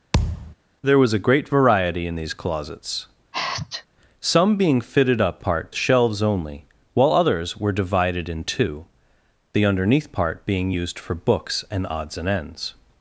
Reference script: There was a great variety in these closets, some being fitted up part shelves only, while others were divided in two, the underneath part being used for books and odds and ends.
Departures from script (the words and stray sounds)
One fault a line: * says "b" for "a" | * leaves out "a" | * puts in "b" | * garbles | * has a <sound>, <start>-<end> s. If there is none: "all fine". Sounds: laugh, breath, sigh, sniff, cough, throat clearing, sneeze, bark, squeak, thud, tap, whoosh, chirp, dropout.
* has a thud, 0.1-0.6 s
* has a sneeze, 3.3-3.9 s